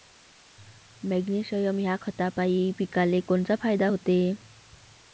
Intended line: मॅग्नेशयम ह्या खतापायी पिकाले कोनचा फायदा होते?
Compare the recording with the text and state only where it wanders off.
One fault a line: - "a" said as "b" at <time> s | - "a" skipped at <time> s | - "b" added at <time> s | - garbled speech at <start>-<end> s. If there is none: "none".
none